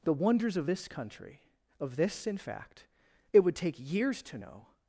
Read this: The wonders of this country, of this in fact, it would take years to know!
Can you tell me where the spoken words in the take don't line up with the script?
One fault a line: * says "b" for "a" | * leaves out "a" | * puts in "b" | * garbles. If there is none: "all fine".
all fine